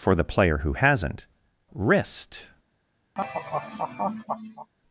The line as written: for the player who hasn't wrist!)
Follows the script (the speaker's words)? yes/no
yes